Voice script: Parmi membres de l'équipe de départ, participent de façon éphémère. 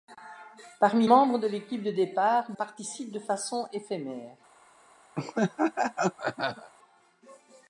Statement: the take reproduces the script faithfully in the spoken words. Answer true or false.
true